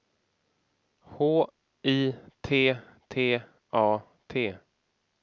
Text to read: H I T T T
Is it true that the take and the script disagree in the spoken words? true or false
true